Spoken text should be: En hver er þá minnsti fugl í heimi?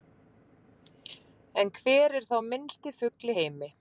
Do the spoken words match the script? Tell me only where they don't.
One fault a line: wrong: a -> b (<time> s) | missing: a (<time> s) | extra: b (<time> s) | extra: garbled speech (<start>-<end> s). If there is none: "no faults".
no faults